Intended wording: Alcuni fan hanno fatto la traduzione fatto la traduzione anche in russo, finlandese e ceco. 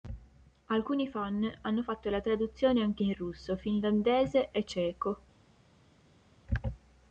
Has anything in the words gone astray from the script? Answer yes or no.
yes